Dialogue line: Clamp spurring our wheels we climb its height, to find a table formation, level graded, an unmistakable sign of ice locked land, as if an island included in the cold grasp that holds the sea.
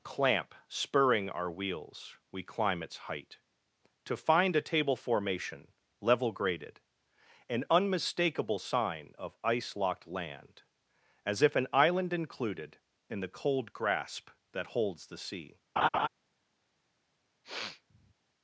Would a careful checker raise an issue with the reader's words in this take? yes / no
no